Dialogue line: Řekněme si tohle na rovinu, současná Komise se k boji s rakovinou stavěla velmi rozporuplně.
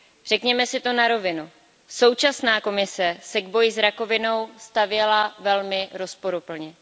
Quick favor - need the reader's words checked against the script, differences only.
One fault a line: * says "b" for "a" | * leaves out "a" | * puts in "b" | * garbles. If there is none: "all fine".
* says "to" for "tohle"